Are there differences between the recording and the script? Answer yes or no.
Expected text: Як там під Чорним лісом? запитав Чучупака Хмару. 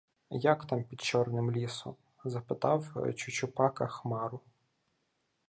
no